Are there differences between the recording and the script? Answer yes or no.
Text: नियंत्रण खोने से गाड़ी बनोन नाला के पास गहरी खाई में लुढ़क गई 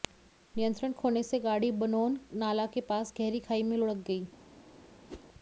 no